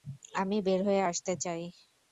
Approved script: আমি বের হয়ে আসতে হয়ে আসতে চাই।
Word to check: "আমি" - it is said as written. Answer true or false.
true